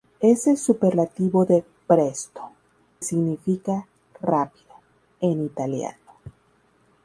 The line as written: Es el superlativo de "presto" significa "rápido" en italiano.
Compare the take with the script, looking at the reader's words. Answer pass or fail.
pass